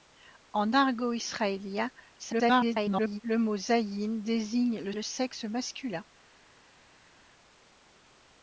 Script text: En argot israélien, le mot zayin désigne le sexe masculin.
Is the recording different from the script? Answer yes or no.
yes